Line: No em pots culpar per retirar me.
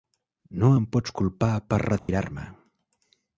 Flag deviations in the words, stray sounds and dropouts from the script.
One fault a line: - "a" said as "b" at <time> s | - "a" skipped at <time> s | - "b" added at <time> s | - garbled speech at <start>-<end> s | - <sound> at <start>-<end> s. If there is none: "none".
- dropout at 2.0-2.1 s